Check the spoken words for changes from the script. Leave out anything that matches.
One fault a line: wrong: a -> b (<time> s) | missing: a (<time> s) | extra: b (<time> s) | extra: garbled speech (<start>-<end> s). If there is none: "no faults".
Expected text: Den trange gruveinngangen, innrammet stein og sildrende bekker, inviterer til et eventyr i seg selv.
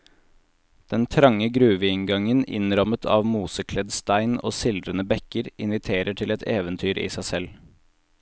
extra: av mosekledd (3.1 s)